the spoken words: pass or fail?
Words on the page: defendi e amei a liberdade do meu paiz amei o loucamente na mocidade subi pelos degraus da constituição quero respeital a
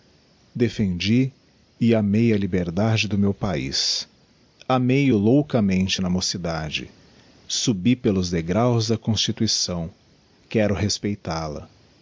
pass